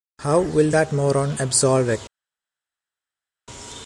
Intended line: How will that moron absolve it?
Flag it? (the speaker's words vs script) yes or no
no